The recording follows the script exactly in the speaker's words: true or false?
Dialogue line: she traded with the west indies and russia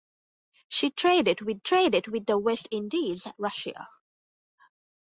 false